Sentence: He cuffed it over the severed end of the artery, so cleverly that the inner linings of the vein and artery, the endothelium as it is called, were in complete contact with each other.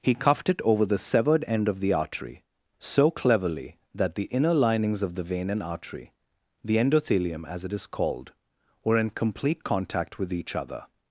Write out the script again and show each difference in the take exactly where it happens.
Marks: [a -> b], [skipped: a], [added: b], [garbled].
He cuffed it over the severed end of the artery, so cleverly that the inner linings of the vein and artery, the endothelium as it is called, were in complete contact with each other.